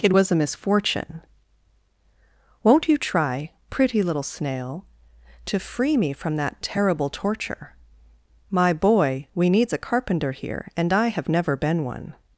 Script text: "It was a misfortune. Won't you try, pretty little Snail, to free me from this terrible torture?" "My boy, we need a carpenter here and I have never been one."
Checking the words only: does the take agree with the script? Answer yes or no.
no